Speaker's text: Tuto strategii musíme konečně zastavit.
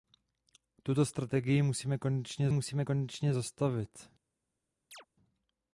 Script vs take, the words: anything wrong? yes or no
yes